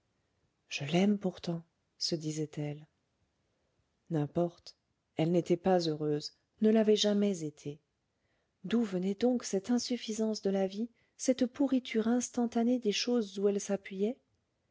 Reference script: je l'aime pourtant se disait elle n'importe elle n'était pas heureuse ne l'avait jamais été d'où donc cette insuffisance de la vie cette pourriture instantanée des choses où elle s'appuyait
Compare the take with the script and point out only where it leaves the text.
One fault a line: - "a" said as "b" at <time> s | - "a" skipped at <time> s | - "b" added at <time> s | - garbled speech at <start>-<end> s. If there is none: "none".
- "venait" added at 8.8 s